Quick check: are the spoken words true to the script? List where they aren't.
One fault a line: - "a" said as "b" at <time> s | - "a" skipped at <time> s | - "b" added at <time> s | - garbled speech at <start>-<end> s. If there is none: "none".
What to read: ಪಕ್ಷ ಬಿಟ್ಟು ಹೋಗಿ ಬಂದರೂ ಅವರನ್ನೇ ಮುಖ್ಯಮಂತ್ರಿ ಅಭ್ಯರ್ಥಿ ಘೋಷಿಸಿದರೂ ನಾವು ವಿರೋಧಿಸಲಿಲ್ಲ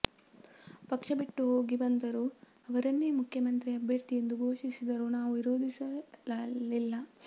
- "ಎಂದು" added at 4.2 s